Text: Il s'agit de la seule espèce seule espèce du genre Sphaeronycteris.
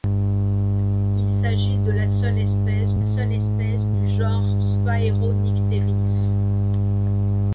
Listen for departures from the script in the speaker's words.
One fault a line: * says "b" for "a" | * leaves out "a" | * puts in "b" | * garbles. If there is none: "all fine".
all fine